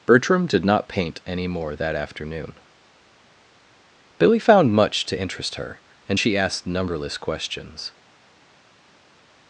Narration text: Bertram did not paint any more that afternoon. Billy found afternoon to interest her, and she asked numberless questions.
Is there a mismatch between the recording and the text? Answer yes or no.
yes